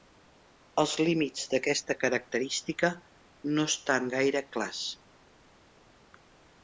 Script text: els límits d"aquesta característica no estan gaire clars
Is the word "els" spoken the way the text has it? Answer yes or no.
yes